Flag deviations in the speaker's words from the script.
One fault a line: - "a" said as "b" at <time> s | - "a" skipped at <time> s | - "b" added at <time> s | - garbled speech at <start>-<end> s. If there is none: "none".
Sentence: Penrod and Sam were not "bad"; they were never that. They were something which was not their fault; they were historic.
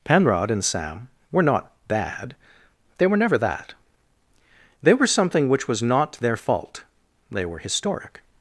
none